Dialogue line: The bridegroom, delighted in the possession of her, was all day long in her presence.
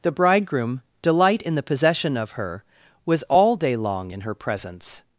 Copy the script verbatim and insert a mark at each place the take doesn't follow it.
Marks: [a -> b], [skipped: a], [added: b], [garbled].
The bridegroom, [delighted -> delight] in the possession of her, was all day long in her presence.